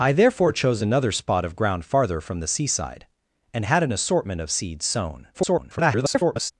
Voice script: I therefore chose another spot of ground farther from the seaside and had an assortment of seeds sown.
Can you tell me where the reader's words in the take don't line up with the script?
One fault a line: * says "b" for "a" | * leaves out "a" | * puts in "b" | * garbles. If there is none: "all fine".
* garbles